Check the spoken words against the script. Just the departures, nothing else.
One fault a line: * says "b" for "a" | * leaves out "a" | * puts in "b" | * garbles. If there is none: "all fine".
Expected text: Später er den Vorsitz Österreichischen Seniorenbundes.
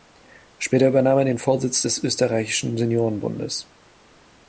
* puts in "übernahm"
* puts in "des"